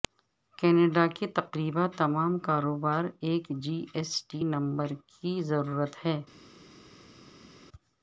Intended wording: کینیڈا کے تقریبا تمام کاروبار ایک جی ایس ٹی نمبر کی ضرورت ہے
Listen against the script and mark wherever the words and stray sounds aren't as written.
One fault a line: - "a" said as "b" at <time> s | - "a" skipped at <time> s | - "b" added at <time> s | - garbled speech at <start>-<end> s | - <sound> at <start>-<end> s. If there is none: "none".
none